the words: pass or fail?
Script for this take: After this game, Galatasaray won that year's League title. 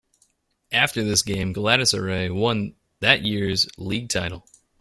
pass